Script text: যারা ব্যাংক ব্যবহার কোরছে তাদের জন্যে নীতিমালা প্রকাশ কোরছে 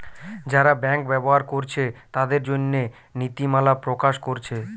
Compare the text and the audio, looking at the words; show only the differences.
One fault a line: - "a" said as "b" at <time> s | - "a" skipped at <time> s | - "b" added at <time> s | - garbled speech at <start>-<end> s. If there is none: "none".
none